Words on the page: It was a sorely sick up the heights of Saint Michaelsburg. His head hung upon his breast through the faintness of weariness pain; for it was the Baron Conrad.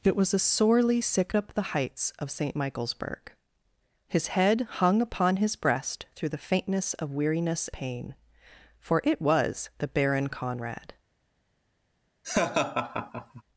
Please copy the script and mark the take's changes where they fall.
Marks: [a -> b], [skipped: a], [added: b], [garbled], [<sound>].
It was a sorely sick up the heights of Saint Michaelsburg. His head hung upon his breast through the faintness of weariness pain; for it was the Baron Conrad. [laugh]